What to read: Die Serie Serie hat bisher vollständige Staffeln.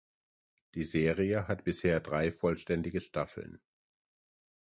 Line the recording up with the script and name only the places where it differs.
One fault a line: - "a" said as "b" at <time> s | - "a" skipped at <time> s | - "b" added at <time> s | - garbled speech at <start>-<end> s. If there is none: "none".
- "Serie" skipped at 1.5 s
- "drei" added at 2.0 s